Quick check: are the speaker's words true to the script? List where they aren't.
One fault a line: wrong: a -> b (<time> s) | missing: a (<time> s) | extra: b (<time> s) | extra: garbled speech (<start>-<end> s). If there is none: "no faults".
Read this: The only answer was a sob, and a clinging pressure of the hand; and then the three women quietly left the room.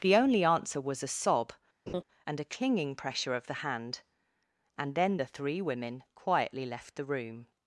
no faults